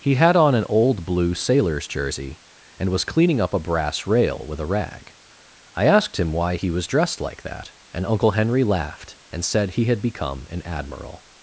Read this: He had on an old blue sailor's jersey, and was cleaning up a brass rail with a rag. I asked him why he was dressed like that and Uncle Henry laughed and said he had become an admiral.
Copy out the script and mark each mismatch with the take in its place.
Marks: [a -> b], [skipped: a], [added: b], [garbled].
He had on an old blue sailor's jersey, and was cleaning up a brass rail with a rag. I asked him why he was dressed like that and Uncle Henry laughed and said he had become an admiral.